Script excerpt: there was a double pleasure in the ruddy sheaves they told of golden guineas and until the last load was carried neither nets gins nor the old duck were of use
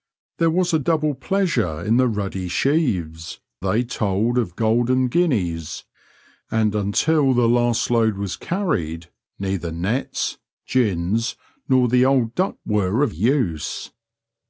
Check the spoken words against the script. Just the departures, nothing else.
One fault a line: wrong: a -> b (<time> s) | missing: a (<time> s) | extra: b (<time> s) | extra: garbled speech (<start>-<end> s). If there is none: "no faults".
no faults